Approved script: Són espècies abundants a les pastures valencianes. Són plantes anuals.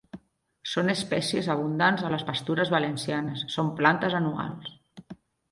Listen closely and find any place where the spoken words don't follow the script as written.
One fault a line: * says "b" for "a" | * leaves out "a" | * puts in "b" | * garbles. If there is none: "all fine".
all fine